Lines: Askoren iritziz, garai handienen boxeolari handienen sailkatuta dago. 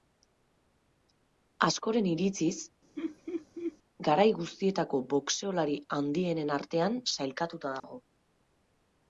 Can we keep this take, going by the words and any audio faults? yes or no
no